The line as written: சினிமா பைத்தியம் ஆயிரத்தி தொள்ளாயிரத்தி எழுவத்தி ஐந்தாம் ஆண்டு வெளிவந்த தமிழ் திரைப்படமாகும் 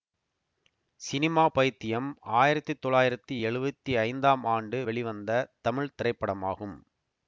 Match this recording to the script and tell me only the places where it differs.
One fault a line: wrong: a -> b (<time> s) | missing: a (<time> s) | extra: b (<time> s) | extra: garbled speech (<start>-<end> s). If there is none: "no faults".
no faults